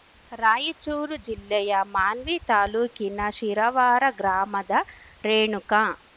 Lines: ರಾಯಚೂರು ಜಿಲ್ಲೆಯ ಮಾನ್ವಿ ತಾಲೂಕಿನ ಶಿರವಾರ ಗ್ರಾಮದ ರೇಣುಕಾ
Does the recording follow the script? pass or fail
pass